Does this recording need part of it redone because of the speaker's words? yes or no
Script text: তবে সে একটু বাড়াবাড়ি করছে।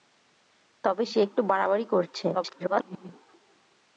yes